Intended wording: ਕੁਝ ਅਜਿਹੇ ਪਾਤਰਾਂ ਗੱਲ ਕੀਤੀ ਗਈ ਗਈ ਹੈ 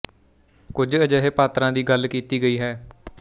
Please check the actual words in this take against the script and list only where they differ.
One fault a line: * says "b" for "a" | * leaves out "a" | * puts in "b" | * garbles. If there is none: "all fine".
* puts in "ਦੀ"
* leaves out "ਗਈ"